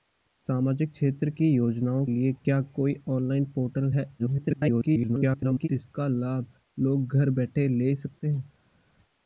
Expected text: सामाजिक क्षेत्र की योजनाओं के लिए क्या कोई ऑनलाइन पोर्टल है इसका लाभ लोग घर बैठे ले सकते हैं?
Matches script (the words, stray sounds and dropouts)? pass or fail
fail